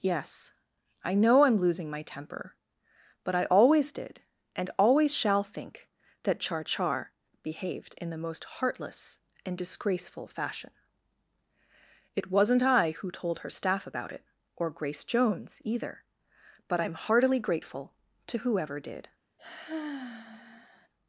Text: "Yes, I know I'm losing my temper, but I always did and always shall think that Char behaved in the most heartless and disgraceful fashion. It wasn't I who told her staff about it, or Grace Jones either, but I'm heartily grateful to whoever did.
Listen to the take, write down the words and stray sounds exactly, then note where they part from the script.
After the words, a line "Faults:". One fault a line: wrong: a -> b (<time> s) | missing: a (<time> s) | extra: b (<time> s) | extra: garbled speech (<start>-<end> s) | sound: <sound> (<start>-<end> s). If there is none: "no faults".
"Yes, I know I'm losing my temper, but I always did and always shall think that Char Char behaved in the most heartless and disgraceful fashion. It wasn't I who told her staff about it, or Grace Jones either, but I'm heartily grateful to whoever did.
Faults:
extra: Char (6.6 s)
sound: sigh (19.4-20.9 s)